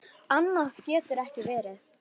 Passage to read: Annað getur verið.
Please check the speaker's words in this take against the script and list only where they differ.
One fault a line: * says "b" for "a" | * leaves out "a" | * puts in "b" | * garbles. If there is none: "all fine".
* puts in "ekki"